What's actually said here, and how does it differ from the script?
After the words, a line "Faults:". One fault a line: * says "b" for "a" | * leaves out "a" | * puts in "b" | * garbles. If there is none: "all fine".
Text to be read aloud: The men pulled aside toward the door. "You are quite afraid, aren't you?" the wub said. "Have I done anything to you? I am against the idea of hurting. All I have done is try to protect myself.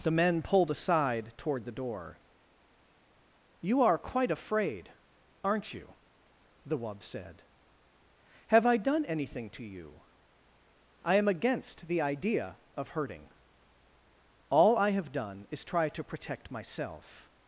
The men pulled aside toward the door. "You are quite afraid, aren't you?" the wub said. "Have I done anything to you? I am against the idea of hurting. All I have done is try to protect myself.
Faults:
all fine